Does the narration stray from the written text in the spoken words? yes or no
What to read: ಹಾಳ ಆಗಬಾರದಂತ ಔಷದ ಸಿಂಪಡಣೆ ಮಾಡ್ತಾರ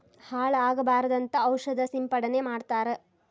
no